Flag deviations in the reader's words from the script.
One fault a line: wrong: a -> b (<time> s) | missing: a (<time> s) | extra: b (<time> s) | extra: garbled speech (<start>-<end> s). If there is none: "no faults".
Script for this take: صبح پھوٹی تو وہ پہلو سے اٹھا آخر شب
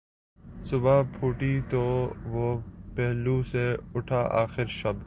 no faults